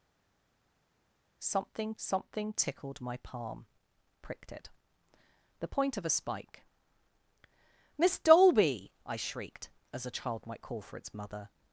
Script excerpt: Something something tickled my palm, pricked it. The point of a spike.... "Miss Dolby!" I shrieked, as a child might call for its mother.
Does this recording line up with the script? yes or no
yes